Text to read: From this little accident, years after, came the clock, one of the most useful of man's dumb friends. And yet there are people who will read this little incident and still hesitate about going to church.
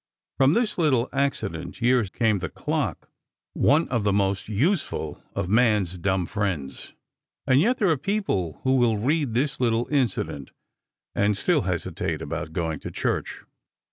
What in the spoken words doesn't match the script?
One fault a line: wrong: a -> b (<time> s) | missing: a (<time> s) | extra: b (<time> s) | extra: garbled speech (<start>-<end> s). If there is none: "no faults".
missing: after (2.1 s)